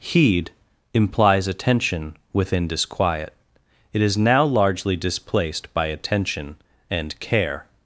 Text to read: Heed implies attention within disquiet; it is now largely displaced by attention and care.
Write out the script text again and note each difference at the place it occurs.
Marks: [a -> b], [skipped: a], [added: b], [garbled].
Heed implies attention within disquiet; it is now largely displaced by attention and care.